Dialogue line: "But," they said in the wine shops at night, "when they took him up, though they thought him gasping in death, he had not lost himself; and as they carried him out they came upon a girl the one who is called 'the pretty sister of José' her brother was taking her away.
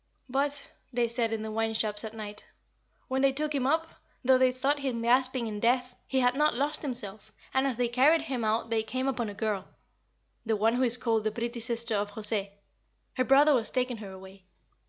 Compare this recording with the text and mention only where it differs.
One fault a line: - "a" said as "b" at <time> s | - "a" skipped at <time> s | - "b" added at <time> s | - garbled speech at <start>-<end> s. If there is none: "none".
none